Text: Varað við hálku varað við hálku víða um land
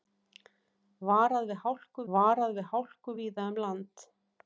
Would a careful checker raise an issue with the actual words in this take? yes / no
no